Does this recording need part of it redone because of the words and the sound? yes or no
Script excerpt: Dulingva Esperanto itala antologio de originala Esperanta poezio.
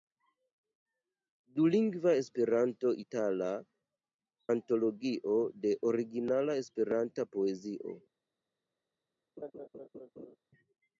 yes